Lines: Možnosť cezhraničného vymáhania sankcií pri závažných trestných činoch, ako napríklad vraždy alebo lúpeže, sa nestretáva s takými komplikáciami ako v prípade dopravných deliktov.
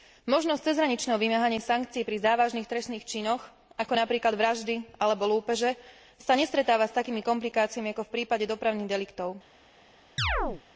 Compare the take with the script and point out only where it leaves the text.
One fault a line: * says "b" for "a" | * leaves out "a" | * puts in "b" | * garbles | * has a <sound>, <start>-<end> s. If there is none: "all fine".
* has a chirp, 10.2-10.6 s